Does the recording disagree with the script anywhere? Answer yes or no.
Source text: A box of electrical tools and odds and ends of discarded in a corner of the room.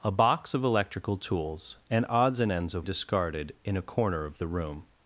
no